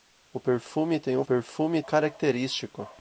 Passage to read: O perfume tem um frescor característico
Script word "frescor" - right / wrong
wrong